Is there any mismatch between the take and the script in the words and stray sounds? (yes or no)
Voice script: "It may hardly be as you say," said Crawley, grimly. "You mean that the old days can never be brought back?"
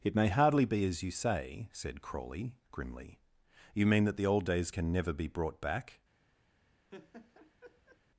yes